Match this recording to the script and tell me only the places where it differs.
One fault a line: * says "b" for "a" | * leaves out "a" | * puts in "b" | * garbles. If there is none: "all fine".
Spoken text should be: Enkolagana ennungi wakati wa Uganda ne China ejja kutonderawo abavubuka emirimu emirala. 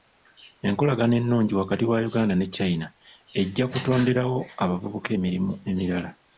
all fine